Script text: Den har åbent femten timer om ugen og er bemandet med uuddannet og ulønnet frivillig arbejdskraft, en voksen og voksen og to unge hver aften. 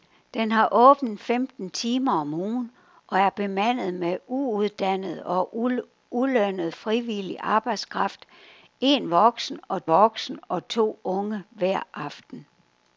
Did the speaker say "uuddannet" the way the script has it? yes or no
yes